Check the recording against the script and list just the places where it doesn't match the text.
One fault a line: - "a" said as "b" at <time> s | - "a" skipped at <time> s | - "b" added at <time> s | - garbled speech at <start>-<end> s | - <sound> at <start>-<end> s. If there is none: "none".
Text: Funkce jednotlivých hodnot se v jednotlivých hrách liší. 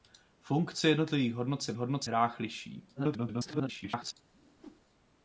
- "jednotlivých" said as "hodnot" at 1.7 s
- garbled speech at 3.0-4.1 s
- whoosh at 4.3-4.9 s